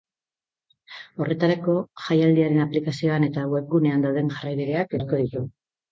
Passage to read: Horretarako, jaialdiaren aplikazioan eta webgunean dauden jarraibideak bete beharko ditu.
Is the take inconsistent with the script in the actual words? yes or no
yes